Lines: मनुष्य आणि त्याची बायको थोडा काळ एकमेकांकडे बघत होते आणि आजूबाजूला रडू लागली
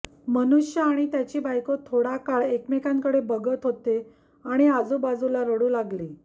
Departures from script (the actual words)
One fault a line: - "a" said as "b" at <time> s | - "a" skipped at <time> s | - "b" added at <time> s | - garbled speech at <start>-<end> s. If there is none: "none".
none